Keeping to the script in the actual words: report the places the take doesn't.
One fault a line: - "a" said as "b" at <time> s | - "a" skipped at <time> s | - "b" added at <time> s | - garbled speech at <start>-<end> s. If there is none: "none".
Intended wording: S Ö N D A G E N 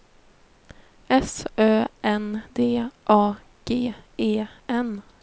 none